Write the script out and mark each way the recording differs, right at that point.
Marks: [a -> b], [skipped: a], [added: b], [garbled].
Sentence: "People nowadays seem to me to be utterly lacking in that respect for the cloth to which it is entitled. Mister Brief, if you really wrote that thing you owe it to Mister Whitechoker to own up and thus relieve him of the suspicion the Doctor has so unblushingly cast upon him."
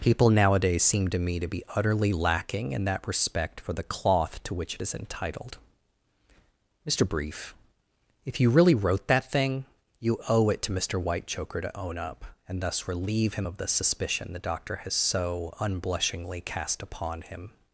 "People nowadays seem to me to be utterly lacking in that respect for the cloth to which it is entitled. Mister Brief, if you really wrote that thing you owe it to Mister Whitechoker to own up and thus relieve him of the suspicion the Doctor has so unblushingly cast upon him."